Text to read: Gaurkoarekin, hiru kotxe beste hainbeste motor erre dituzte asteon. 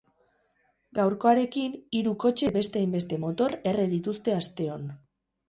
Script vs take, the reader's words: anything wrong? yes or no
no